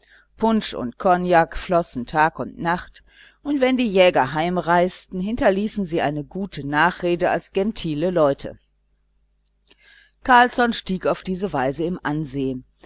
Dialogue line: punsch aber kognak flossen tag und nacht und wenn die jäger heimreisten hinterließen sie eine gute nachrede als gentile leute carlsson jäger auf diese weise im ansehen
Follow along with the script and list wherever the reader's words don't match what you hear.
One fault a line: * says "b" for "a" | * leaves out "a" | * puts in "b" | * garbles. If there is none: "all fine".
* says "und" for "aber"
* says "stieg" for "jäger"